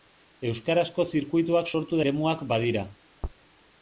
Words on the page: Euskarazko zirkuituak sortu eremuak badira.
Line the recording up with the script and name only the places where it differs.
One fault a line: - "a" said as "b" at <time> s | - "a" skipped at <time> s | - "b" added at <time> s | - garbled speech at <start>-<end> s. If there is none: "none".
none